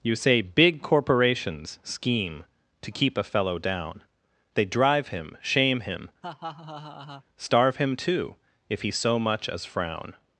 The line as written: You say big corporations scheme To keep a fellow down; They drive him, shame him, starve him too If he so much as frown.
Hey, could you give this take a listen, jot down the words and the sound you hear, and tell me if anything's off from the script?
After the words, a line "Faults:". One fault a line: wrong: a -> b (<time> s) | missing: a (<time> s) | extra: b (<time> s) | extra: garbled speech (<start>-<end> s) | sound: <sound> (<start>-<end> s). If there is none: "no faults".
You say big corporations scheme To keep a fellow down; They drive him, shame him, starve him too If he so much as frown.
Faults:
sound: laugh (6.2-7.2 s)